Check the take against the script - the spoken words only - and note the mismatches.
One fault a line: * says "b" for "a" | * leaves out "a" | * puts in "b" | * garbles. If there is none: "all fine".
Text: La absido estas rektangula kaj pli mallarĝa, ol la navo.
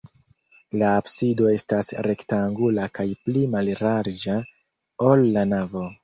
all fine